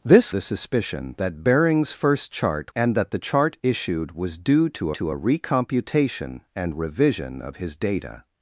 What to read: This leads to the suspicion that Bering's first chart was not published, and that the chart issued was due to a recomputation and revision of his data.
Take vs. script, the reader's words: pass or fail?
fail